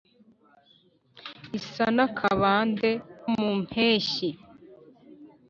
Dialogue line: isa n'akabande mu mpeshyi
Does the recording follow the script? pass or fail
pass